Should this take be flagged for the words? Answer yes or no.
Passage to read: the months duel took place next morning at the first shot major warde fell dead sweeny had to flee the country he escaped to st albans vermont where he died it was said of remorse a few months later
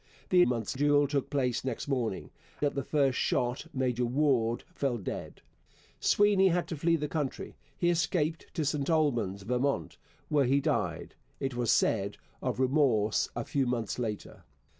no